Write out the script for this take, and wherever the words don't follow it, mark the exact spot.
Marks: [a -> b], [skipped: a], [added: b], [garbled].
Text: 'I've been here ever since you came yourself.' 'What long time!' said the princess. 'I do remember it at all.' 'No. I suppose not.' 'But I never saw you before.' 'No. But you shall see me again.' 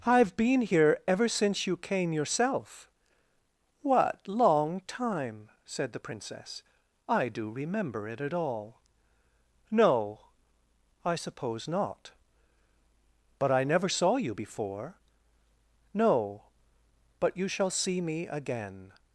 'I've been here ever since you came yourself.' 'What long time!' said the princess. 'I do remember it at all.' 'No. I suppose not.' 'But I never saw you before.' 'No. But you shall see me again.'